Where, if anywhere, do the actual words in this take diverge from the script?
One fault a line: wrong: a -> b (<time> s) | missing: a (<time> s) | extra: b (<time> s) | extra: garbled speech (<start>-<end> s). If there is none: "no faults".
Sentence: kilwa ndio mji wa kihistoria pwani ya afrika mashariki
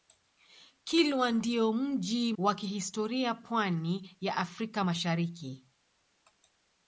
no faults